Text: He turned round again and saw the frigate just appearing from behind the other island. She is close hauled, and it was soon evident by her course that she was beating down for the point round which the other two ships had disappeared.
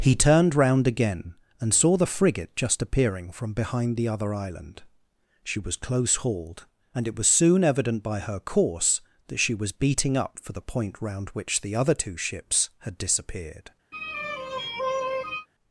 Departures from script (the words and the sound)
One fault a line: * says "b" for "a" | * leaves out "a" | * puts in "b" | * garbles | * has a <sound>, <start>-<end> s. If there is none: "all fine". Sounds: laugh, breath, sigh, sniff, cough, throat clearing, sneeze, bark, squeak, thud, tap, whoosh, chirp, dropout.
* says "was" for "is"
* says "up" for "down"
* has a sigh, 13.9-15.5 s